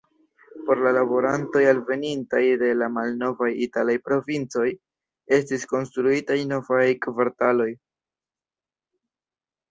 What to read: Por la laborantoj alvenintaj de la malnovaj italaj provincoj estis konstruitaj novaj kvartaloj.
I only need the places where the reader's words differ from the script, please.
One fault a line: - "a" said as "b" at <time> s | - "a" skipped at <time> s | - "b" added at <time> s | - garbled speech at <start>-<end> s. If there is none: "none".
none